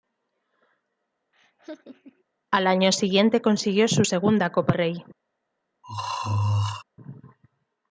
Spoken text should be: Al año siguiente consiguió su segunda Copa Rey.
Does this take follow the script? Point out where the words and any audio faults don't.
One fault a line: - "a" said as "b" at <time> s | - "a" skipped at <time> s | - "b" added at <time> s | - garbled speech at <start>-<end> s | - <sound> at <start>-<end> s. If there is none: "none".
- laugh at 1.3-2.2 s
- throat clearing at 5.8-6.8 s